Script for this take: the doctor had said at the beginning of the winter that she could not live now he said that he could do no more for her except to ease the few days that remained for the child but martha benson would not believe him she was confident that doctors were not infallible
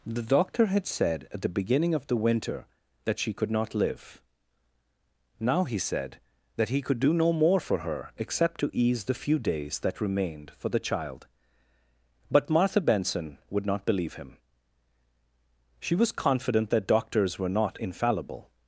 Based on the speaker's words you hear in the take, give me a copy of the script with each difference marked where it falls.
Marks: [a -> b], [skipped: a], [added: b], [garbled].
the doctor had said at the beginning of the winter that she could not live now he said that he could do no more for her except to ease the few days that remained for the child but martha benson would not believe him she was confident that doctors were not infallible